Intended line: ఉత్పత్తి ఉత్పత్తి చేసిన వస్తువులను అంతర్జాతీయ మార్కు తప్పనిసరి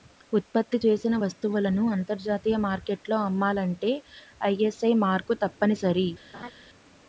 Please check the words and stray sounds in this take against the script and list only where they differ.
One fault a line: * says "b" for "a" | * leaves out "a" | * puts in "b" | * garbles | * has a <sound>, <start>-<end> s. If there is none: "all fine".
* leaves out "ఉత్పత్తి"
* puts in "మార్కెట్లో అమ్మాలంటే ఐఎస్ఐ"
* has a laugh, 6.3-6.5 s